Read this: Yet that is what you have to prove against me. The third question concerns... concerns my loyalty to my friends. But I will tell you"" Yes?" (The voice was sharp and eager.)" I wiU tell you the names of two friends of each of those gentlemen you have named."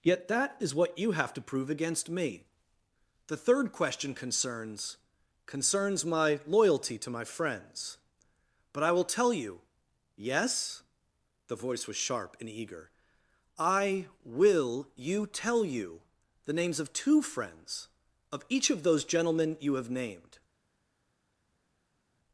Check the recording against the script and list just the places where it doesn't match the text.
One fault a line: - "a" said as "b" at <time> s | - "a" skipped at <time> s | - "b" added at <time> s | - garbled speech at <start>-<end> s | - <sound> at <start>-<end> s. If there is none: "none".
- "wiU" said as "will you" at 14.2 s